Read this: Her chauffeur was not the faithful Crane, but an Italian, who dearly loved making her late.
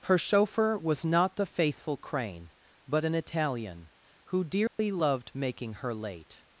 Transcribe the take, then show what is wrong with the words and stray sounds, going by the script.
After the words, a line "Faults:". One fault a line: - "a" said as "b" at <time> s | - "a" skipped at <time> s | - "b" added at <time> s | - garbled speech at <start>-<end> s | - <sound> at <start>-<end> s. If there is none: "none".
Her chauffeur was not the faithful Crane, but an Italian, who dearly loved making her late.
Faults:
- dropout at 4.7-4.8 s